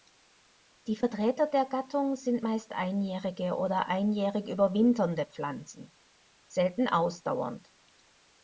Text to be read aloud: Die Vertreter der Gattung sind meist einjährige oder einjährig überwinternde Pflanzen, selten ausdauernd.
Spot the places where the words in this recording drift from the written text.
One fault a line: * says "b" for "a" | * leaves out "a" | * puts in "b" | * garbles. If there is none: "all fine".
all fine